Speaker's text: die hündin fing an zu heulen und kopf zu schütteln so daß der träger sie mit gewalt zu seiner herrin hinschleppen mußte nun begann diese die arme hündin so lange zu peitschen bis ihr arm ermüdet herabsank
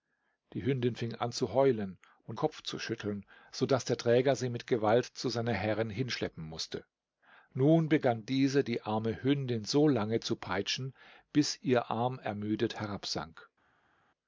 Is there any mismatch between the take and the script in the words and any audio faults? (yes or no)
no